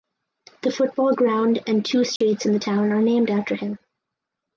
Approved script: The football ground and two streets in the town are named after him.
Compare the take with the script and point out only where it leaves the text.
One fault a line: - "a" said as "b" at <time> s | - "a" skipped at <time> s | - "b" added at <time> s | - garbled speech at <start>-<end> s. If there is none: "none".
none